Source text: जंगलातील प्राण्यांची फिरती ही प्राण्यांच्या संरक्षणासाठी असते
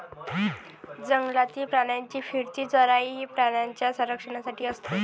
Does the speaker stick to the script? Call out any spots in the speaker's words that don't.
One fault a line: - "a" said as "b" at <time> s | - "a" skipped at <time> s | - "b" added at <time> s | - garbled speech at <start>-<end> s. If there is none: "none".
- "चराई" added at 2.7 s